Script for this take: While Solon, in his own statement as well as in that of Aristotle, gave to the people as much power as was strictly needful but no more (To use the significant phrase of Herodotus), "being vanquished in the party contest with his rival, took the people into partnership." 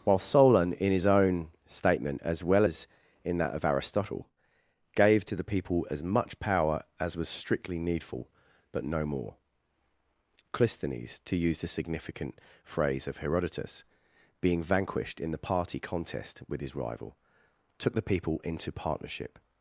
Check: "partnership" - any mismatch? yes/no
no